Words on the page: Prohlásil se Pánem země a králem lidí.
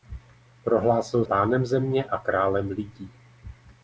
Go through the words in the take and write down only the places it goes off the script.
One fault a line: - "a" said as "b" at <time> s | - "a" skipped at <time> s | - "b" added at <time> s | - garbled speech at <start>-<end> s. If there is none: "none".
- "se" skipped at 1.2 s